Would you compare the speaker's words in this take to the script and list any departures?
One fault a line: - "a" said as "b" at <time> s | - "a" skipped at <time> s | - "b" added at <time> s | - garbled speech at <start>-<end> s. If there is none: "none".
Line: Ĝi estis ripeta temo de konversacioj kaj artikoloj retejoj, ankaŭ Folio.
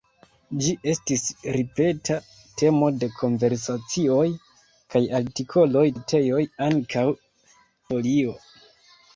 none